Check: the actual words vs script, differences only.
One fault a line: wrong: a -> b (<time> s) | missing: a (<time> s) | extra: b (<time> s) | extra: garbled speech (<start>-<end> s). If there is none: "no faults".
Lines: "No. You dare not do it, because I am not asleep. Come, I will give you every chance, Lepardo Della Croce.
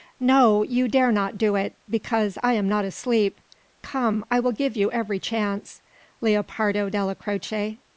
no faults